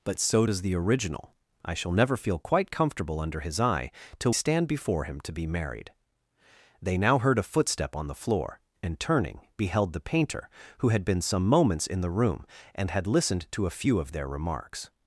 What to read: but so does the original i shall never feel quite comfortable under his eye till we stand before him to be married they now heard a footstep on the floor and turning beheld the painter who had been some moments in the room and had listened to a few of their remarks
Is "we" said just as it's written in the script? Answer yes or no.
no